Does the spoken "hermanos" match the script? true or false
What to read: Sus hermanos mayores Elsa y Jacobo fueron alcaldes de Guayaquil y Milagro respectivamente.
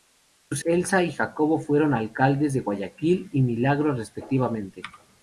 false